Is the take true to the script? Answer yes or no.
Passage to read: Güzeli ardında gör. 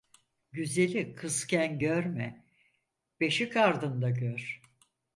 no